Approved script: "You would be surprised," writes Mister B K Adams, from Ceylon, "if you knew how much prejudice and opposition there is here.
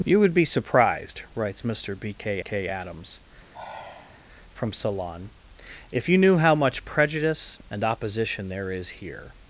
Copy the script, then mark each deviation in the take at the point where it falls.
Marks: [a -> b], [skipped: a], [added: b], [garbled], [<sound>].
"You would be surprised," writes Mister B K [added: K] Adams, [sigh] from Ceylon, "if you knew how much prejudice and opposition there is here.